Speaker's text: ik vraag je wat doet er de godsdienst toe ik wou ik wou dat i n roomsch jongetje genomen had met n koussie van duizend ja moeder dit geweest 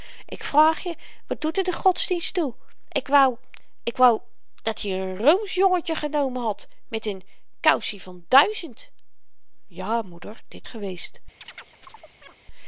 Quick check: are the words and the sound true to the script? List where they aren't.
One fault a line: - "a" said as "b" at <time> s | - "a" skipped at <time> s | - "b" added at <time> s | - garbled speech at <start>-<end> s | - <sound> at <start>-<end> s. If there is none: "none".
- chirp at 11.4-12.4 s